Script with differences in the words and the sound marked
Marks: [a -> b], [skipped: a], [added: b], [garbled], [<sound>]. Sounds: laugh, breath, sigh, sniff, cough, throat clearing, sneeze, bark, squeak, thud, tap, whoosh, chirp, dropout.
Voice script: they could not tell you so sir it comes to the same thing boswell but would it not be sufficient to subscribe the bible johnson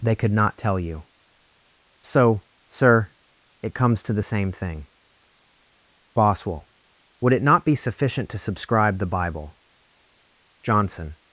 they could not tell you so sir it comes to the same thing boswell [skipped: but] would it not be sufficient to subscribe the bible johnson